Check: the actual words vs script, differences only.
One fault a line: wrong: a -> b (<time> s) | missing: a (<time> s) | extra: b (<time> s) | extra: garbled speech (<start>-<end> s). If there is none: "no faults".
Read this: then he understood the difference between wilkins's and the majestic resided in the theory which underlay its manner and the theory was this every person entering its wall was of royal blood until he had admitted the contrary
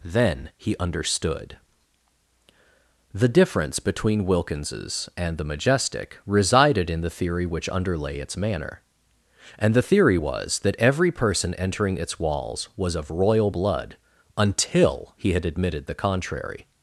wrong: this -> that (10.6 s)
wrong: wall -> walls (12.2 s)